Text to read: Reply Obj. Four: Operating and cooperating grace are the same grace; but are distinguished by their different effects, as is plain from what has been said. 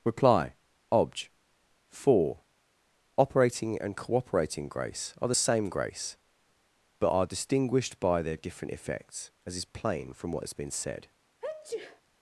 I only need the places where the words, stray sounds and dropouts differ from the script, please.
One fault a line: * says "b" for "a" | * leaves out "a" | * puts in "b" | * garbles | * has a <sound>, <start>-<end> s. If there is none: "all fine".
* has a sneeze, 11.4-12.0 s